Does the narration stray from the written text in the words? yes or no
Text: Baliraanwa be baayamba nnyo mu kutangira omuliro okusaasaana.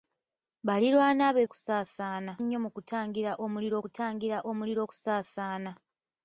yes